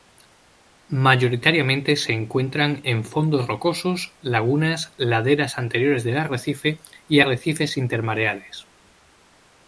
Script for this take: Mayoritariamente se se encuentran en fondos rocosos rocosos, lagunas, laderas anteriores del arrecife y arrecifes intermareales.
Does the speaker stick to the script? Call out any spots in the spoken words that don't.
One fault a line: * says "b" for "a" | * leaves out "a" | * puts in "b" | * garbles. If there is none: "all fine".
* leaves out "se"
* leaves out "rocosos"